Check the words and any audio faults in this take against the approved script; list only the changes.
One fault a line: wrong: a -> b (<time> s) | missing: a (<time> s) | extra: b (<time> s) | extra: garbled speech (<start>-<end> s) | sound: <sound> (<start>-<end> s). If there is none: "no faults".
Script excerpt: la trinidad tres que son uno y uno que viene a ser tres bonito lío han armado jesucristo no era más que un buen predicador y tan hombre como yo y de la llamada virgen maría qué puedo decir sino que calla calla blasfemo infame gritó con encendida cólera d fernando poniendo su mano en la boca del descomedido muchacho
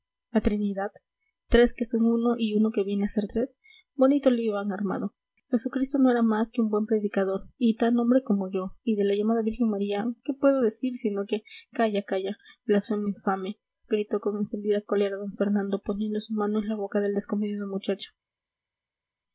no faults